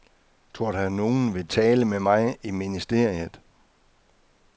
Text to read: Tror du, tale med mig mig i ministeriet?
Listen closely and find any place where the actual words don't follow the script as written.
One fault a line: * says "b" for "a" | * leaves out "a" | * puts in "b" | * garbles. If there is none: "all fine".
* puts in "at nogen vil"
* leaves out "mig"